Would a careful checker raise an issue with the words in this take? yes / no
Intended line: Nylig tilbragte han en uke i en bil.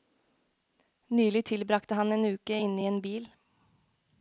yes